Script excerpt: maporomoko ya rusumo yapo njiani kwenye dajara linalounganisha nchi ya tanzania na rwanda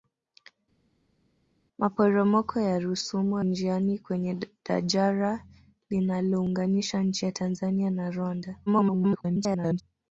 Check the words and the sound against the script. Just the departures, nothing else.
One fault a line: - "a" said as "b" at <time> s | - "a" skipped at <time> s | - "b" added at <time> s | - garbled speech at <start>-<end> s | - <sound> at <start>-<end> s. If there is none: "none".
- "yapo" skipped at 3.4 s
- garbled speech at 8.7-9.8 s